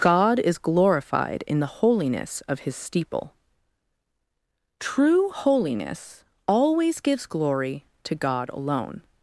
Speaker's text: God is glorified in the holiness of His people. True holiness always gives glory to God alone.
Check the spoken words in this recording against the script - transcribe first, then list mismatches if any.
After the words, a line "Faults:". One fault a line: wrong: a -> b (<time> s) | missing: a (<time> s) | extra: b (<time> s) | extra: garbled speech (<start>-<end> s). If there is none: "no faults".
God is glorified in the holiness of His steeple. True holiness always gives glory to God alone.
Faults:
wrong: people -> steeple (2.8 s)